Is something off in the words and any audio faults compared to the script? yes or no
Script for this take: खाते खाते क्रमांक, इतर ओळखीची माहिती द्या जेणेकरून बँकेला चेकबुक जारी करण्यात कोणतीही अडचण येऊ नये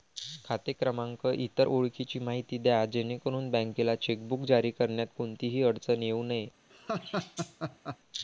yes